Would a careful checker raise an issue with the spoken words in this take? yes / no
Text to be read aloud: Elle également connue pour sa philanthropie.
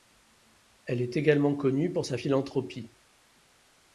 yes